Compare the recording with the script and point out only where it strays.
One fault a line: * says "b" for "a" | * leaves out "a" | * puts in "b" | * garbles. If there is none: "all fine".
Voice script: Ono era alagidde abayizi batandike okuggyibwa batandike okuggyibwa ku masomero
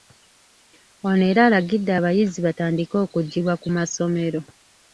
* leaves out "batandike okuggyibwa"